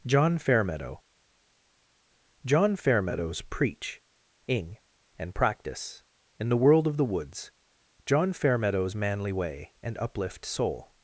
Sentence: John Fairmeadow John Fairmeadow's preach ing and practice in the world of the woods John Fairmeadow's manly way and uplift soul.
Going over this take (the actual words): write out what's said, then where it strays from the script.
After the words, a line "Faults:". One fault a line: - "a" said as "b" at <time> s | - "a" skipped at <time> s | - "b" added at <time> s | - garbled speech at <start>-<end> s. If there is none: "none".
John Fairmeadow John Fairmeadow's preach ing and practice in the world of the woods John Fairmeadow's manly way and uplift soul.
Faults:
none